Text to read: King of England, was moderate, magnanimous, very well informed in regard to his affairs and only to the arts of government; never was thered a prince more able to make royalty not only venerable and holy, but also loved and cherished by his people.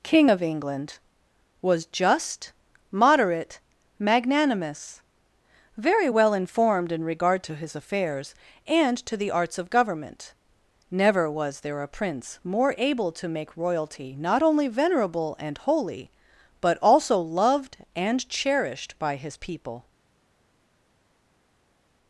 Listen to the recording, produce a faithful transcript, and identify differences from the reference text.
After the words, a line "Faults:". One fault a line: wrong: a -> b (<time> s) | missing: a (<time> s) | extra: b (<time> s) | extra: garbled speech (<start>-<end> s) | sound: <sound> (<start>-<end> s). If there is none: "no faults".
King of England, was just, moderate, magnanimous, very well informed in regard to his affairs and to the arts of government; never was there a prince more able to make royalty not only venerable and holy, but also loved and cherished by his people.
Faults:
extra: just (1.8 s)
missing: only (9.0 s)
wrong: thered -> there (11.6 s)